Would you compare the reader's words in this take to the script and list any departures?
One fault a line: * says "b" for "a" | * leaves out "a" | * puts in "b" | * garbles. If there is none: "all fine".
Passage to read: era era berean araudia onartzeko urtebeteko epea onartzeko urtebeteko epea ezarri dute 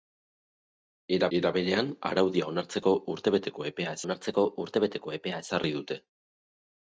all fine